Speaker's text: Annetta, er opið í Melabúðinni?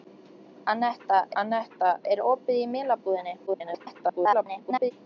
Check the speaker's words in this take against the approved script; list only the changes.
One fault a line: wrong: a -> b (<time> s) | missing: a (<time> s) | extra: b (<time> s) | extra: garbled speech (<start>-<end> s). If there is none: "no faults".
extra: annetta (1.4 s)
extra: garbled speech (3.5-4.9 s)